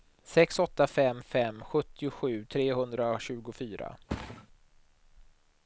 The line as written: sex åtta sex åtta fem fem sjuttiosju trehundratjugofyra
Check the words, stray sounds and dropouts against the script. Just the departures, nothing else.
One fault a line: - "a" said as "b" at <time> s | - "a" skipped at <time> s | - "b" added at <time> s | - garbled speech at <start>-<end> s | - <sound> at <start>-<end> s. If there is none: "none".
- "sex åtta" skipped at 0.9 s
- thud at 4.1-4.5 s